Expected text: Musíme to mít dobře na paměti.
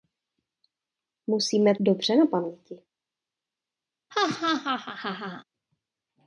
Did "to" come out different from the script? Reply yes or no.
yes